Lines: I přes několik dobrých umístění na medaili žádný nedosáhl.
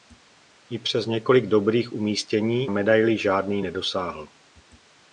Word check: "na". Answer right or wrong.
wrong